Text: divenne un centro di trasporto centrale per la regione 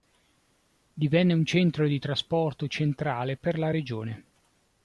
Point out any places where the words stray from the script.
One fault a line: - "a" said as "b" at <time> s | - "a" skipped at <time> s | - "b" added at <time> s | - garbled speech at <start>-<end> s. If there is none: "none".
none